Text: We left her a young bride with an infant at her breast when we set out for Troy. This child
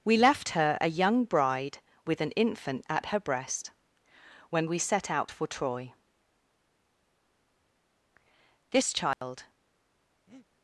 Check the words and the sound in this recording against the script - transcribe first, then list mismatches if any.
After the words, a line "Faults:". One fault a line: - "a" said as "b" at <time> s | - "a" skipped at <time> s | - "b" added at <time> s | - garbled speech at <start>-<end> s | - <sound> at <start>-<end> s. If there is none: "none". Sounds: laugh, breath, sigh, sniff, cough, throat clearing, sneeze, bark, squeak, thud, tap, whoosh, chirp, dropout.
We left her a young bride with an infant at her breast when we set out for Troy. This child
Faults:
- dropout at 9.1-9.2 s
- breath at 10.3-10.5 s